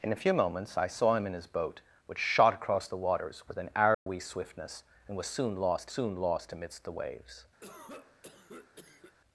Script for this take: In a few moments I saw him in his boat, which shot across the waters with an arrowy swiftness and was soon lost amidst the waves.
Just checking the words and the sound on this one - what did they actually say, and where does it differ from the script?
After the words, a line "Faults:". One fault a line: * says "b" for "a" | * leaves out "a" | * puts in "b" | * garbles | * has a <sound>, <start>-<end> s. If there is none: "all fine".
In a few moments I saw him in his boat, which shot across the waters with an arrowy swiftness and was soon lost soon lost amidst the waves.
Faults:
* has a dropout, 3.9-4.1 s
* puts in "soon lost"
* has a cough, 7.6-9.1 s